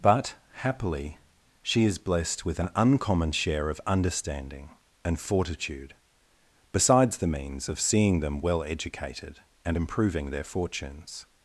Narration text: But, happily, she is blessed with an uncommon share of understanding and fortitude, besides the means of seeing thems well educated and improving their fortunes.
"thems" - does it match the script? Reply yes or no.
no